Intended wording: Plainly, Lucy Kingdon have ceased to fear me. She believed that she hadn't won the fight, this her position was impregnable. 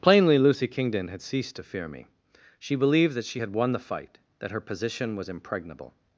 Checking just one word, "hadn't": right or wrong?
wrong